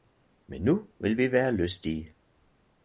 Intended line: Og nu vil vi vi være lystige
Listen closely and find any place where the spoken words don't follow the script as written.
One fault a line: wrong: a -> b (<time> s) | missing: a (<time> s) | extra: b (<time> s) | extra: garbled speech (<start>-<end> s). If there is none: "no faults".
wrong: Og -> Men (0.5 s)
missing: vi (1.3 s)